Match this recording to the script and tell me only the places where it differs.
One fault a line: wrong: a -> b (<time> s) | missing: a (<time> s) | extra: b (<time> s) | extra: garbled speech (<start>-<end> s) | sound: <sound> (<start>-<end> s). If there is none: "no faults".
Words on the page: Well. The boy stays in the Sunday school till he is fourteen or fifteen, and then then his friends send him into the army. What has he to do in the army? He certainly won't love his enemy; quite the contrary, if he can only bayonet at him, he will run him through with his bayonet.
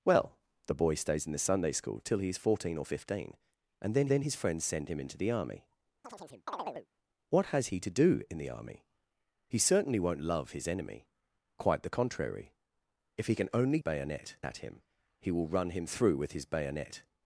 sound: chirp (6.0-6.9 s)